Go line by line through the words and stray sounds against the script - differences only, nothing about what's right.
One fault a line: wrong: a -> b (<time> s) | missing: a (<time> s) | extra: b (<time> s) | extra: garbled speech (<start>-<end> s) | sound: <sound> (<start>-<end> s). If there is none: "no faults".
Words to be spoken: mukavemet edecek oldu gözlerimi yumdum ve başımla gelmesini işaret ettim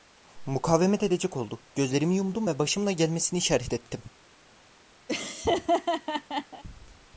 sound: laugh (5.1-6.6 s)